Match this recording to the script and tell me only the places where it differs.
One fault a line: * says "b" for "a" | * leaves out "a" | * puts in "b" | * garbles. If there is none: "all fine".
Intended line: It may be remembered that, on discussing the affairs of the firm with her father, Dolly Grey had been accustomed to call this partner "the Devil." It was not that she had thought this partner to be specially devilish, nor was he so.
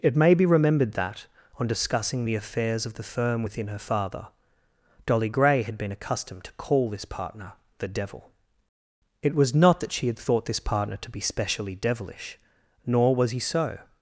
* says "within" for "with"